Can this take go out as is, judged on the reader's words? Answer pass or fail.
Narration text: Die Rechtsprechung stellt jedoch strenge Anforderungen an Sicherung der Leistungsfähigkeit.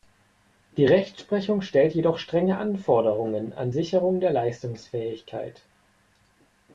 pass